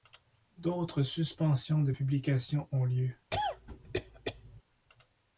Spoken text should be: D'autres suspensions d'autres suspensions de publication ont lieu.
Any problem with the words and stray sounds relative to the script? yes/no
yes